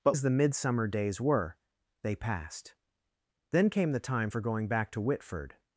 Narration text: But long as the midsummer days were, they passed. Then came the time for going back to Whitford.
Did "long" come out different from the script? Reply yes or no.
yes